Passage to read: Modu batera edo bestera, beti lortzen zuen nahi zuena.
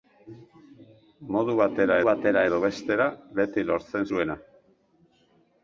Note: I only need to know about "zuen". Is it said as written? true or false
false